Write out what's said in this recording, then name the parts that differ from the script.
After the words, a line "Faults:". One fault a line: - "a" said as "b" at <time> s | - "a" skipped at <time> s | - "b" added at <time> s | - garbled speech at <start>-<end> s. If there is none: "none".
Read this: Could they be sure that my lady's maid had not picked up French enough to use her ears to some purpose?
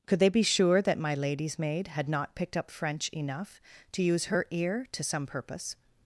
Could they be sure that my lady's maid had not picked up French enough to use her ear to some purpose?
Faults:
- "ears" said as "ear" at 4.5 s